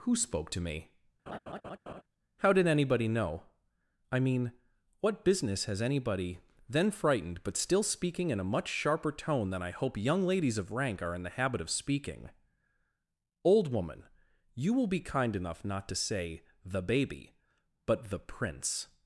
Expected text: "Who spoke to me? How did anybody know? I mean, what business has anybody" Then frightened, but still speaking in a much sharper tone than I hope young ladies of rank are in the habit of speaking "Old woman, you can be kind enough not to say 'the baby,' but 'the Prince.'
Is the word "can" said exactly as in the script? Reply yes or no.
no